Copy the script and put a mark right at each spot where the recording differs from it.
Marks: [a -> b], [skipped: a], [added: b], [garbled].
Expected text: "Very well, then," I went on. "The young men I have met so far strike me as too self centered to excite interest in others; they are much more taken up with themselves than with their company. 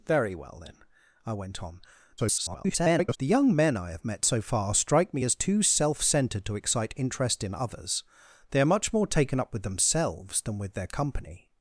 "Very well, then," I went on. [garbled] "The young men I have met so far strike me as too self centered to excite interest in others; they are much more taken up with themselves than with their company.